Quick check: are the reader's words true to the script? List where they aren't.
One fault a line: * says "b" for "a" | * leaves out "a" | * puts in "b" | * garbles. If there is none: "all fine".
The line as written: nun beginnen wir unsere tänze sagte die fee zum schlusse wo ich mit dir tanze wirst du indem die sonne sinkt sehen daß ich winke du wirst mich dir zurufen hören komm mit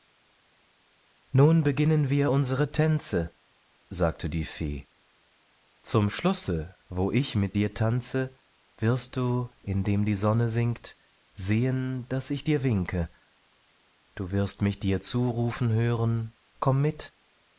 * puts in "dir"